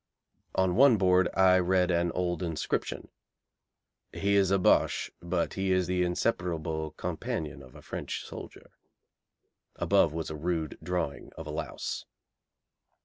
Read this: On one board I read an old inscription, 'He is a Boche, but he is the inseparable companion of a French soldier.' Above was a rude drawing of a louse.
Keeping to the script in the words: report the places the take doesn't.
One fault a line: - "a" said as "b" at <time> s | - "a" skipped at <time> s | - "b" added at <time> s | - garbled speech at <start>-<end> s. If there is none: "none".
none